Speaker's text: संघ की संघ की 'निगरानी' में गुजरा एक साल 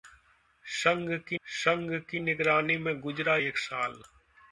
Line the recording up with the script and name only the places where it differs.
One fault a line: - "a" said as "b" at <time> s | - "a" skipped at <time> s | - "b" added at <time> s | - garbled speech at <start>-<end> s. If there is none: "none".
none